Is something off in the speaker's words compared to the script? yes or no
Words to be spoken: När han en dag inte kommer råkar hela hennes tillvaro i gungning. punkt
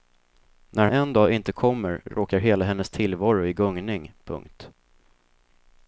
yes